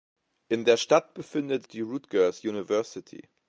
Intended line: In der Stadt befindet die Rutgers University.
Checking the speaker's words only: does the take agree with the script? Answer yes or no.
yes